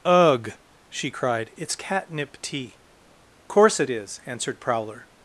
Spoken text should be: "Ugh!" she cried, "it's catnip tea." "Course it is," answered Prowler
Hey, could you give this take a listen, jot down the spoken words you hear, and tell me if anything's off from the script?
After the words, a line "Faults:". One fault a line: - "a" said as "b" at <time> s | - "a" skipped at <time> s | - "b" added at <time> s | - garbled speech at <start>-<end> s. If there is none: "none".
"Ugh!" she cried, "it's catnip tea." "Course it is," answered Prowler
Faults:
none